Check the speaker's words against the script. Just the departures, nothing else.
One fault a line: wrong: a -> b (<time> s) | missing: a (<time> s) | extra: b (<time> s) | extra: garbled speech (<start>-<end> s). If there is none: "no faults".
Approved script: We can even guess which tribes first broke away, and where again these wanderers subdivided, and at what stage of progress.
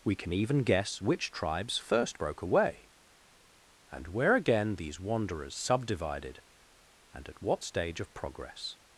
no faults